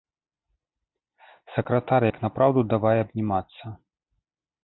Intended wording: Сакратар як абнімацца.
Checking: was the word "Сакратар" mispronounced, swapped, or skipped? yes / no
no